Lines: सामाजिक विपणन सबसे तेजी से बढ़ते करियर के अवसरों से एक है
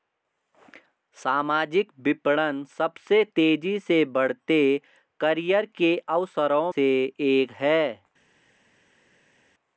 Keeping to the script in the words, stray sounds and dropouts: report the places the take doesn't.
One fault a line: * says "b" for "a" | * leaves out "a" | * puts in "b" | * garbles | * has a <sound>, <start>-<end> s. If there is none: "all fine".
all fine